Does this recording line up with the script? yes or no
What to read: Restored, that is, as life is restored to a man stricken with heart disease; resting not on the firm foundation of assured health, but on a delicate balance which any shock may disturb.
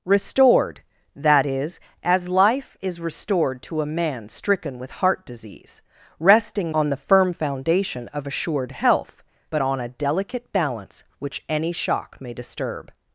no